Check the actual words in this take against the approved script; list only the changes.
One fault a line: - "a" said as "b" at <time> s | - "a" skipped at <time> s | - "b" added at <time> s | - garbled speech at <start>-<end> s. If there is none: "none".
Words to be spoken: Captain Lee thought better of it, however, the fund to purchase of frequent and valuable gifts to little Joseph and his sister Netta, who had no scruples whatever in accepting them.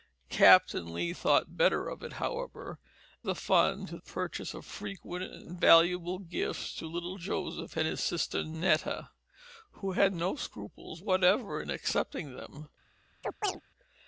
none